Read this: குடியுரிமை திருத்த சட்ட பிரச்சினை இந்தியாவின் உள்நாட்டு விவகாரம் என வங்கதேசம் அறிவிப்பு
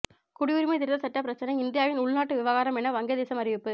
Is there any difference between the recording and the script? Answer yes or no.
no